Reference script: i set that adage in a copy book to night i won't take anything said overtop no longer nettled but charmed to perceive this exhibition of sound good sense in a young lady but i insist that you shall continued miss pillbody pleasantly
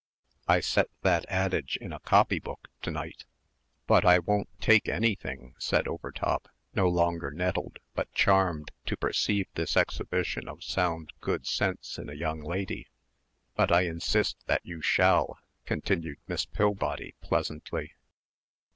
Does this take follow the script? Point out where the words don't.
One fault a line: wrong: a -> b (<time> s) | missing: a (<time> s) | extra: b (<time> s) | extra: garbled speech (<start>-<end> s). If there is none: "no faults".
extra: but (3.9 s)